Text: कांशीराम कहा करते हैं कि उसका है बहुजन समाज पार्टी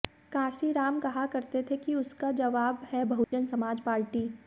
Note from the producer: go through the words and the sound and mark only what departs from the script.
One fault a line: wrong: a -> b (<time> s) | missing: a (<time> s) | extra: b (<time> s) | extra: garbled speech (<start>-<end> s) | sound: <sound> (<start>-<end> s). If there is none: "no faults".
wrong: हैं -> थे (1.6 s)
extra: जवाब (2.3 s)
sound: dropout (3.2-3.3 s)